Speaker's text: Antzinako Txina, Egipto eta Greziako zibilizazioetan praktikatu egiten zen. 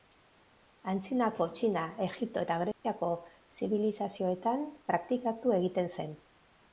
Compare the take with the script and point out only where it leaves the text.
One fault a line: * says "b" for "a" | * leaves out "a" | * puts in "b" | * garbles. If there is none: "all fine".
all fine